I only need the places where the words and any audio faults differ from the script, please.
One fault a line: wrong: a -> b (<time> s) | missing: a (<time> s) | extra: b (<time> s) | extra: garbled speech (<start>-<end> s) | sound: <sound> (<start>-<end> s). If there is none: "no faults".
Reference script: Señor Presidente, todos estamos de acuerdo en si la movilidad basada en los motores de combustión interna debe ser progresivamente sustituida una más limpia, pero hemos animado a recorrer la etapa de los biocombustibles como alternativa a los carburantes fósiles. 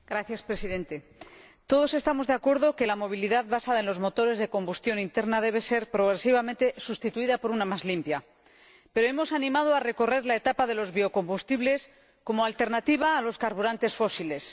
wrong: si -> que (2.8 s)
extra: por (7.4 s)